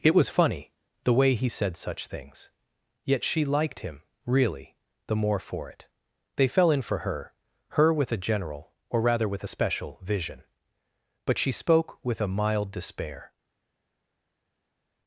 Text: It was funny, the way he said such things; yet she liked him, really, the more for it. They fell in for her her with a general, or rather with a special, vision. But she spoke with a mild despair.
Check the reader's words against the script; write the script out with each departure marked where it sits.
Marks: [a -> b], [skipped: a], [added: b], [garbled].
It was funny, the way he said such things; yet she liked him, really, the more for it. They fell in for her her with a general, or rather with a special, vision. But she spoke with a mild despair.